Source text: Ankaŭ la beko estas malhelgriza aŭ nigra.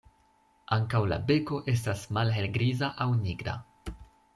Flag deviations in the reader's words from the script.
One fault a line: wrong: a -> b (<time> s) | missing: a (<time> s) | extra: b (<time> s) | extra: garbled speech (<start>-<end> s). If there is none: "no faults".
no faults